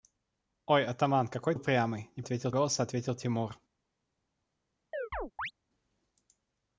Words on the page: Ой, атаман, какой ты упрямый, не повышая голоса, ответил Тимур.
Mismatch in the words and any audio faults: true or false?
true